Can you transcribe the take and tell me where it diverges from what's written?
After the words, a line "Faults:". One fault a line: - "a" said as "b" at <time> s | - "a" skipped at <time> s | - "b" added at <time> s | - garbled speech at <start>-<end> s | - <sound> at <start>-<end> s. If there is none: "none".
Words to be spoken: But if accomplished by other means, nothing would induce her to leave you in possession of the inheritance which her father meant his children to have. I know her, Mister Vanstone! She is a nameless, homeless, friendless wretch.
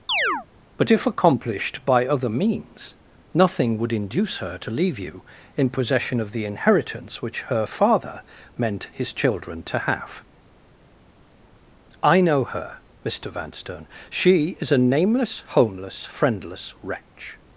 But if accomplished by other means, nothing would induce her to leave you in possession of the inheritance which her father meant his children to have. I know her, Mister Vanstone! She is a nameless, homeless, friendless wretch.
Faults:
- chirp at 0.1-0.5 s